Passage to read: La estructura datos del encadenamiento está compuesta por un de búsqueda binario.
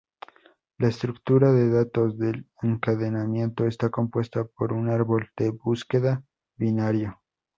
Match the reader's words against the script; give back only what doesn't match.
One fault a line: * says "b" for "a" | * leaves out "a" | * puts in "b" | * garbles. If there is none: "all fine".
* puts in "de"
* puts in "árbol"